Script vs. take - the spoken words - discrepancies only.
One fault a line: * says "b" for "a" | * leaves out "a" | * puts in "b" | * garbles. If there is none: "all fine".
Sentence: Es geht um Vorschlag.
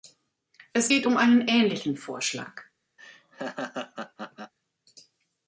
* puts in "einen ähnlichen"